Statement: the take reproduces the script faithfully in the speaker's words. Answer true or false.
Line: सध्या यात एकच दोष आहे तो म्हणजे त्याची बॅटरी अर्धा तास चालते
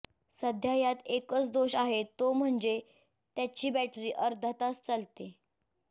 true